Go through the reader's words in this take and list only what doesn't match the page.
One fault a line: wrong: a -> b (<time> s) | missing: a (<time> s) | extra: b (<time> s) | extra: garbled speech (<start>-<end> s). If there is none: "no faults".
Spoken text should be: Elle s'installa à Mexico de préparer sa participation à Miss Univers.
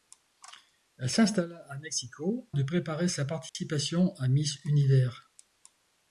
no faults